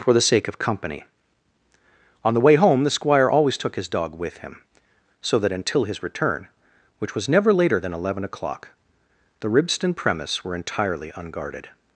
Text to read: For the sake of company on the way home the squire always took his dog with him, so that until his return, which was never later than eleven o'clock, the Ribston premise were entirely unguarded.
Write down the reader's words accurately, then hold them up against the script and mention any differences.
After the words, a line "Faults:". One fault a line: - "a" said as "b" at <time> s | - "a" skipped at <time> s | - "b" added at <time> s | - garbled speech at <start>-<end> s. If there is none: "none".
For the sake of company on the way home the squire always took his dog with him, so that until his return, which was never later than eleven o'clock, the Ribston premise were entirely unguarded.
Faults:
none